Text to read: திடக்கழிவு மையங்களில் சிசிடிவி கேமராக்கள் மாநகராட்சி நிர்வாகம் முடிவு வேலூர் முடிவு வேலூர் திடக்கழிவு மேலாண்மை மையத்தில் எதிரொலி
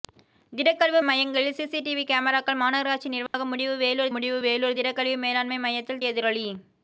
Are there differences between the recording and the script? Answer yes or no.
no